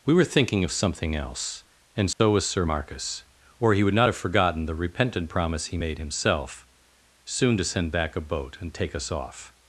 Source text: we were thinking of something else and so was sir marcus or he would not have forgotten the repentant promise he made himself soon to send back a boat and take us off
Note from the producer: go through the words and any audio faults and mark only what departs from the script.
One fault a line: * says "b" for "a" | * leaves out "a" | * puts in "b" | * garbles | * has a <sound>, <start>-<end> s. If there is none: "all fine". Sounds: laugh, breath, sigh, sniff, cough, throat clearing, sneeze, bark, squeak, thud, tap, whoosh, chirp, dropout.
* has a dropout, 2.1-2.2 s